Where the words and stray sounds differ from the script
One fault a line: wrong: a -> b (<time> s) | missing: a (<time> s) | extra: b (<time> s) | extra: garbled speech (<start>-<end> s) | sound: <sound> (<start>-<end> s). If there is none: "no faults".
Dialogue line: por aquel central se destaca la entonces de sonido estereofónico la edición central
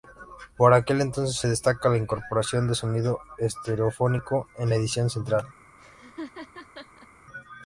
wrong: central -> entonces (1.0 s)
wrong: entonces -> incorporación (2.0 s)
extra: en (4.6 s)
sound: laugh (5.8-7.1 s)